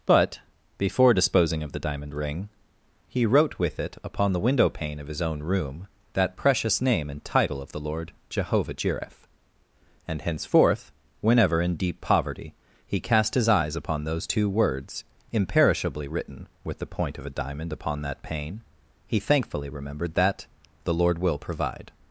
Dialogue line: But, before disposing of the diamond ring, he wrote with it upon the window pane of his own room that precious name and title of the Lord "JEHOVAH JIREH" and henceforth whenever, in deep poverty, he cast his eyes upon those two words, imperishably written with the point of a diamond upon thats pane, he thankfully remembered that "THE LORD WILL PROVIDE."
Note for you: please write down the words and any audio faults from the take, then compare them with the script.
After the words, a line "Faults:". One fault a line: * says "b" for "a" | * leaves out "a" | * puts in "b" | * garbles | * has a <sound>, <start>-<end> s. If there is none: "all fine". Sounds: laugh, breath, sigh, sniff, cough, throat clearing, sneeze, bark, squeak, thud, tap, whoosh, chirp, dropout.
But, before disposing of the diamond ring, he wrote with it upon the window pane of his own room that precious name and title of the Lord "JEHOVAH JIREH" and henceforth whenever, in deep poverty, he cast his eyes upon those two words, imperishably written with the point of a diamond upon that pane, he thankfully remembered that "THE LORD WILL PROVIDE."
Faults:
* says "that" for "thats"